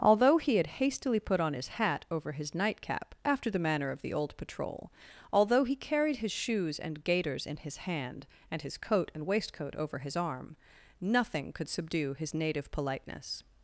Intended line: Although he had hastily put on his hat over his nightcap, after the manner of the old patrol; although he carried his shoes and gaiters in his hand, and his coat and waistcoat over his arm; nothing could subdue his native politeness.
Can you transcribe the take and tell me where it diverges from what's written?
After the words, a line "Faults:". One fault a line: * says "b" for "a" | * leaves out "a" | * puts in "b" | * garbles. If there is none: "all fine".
Although he had hastily put on his hat over his nightcap, after the manner of the old patrol; although he carried his shoes and gaiters in his hand, and his coat and waistcoat over his arm; nothing could subdue his native politeness.
Faults:
all fine